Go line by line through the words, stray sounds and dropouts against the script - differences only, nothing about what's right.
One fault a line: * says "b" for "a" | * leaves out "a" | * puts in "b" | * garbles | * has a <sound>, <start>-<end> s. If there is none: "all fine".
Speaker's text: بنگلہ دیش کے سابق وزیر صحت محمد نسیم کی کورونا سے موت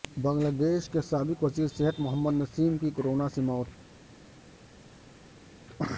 all fine